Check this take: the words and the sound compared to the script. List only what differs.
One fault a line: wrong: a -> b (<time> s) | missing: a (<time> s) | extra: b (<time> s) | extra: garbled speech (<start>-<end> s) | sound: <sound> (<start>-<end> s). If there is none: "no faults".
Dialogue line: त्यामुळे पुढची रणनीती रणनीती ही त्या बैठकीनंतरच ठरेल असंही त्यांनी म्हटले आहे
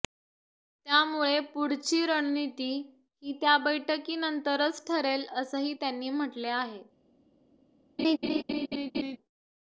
missing: रणनीती (2.7 s)
sound: laugh (8.0-9.2 s)